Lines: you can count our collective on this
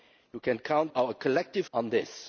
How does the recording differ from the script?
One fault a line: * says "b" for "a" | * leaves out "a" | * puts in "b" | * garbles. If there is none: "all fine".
all fine